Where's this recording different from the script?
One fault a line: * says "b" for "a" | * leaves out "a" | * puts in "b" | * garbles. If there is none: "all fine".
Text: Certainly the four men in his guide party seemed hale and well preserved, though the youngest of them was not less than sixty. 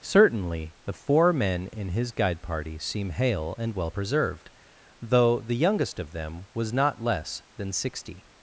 * says "seem" for "seemed"